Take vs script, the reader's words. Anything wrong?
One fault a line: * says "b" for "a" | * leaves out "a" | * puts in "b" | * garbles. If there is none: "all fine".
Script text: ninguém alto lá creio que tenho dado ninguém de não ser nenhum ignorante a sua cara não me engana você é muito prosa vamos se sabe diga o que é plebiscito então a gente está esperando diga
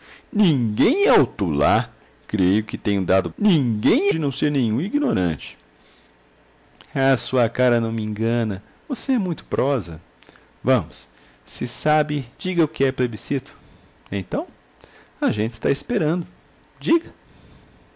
all fine